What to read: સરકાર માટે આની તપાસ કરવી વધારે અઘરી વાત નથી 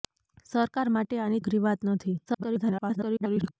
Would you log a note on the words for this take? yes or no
yes